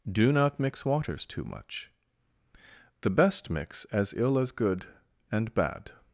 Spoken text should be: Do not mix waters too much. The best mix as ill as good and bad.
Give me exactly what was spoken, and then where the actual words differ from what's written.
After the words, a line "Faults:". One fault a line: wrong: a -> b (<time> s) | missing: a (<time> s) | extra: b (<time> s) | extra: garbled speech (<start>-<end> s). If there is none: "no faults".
Do not mix waters too much. The best mix as ill as good and bad.
Faults:
no faults